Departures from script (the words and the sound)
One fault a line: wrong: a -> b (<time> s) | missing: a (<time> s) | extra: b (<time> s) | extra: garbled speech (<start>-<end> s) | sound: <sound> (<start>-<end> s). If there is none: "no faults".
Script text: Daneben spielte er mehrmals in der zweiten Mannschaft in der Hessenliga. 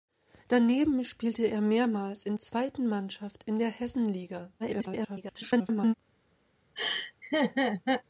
missing: der (2.4 s)
extra: garbled speech (4.6-5.9 s)
sound: laugh (6.8-8.0 s)